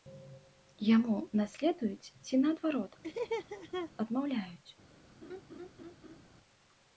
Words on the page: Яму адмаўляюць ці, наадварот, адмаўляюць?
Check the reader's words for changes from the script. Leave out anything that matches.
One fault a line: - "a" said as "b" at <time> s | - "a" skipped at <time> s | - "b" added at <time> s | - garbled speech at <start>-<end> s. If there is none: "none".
- "адмаўляюць" said as "наследуюць" at 1.4 s